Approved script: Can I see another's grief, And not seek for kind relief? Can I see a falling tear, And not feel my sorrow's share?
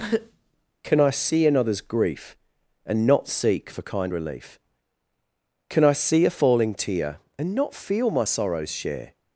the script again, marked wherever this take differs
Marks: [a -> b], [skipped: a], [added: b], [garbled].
Can I see another's grief, And not seek for kind relief? Can I see a falling tear, And not feel my sorrow's share?